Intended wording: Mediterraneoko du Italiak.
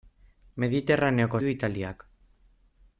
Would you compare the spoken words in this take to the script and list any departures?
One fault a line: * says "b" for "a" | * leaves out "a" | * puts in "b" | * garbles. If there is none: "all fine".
all fine